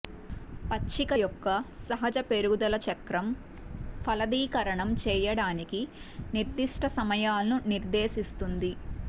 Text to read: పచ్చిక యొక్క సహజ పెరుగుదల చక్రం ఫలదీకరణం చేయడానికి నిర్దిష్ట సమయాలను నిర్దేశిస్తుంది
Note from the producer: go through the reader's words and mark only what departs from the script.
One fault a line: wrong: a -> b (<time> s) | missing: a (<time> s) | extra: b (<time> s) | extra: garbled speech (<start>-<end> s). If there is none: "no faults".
no faults